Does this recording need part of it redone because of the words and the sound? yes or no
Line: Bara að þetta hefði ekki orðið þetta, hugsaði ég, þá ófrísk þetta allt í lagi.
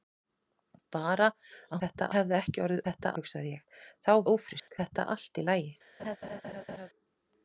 yes